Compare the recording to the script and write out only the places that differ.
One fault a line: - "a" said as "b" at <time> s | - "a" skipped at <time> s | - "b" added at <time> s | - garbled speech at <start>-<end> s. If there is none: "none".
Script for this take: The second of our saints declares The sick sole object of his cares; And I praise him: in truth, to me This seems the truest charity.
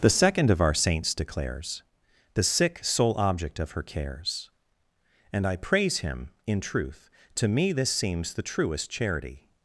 - "his" said as "her" at 3.7 s